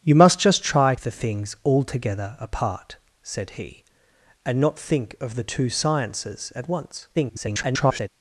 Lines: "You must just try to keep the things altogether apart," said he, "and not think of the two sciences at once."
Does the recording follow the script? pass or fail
fail